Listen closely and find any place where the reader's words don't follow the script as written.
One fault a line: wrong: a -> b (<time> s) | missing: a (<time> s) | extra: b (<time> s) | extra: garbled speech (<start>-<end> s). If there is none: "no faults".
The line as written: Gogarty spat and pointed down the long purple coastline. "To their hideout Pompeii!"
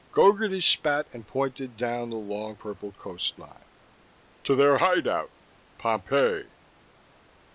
no faults